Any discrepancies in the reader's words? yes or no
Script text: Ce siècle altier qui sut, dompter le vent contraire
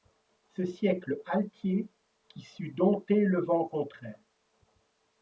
no